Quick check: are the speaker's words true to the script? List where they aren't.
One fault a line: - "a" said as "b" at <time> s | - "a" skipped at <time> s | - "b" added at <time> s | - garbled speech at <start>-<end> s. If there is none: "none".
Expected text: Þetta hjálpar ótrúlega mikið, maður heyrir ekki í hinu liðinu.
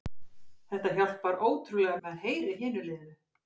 - "mikið" skipped at 2.0 s
- "ekki" skipped at 2.5 s